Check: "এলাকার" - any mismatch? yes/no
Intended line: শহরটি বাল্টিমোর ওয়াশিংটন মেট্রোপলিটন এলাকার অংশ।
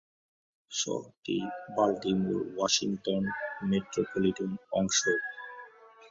yes